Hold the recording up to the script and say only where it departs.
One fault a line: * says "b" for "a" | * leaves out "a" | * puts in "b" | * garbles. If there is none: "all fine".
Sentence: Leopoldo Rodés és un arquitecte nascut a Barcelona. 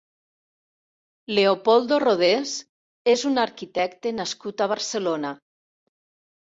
all fine